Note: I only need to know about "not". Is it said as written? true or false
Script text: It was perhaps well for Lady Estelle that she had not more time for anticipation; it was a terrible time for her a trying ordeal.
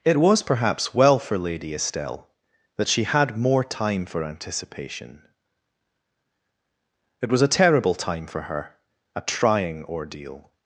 false